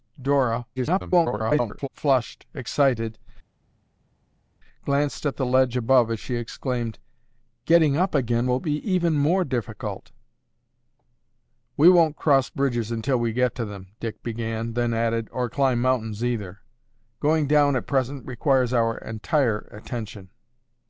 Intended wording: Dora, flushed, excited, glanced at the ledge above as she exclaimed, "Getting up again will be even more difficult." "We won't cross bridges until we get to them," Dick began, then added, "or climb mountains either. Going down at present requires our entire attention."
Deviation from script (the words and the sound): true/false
true